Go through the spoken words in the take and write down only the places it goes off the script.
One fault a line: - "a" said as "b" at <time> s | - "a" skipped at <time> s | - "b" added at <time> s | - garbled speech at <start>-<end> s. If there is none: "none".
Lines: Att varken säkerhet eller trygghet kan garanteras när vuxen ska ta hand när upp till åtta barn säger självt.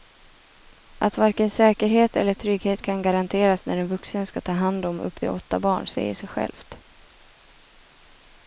- "en" added at 3.8 s
- "när" said as "om" at 4.8 s
- "sig" added at 6.1 s